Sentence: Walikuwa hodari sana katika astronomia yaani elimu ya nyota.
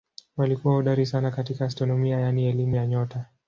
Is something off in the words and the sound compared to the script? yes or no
no